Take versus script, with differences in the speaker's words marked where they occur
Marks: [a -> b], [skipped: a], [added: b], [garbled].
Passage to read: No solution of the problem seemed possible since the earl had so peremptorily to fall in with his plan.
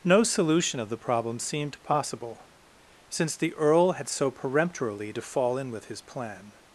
No solution of the problem seemed possible since the earl had so peremptorily to fall in with his plan.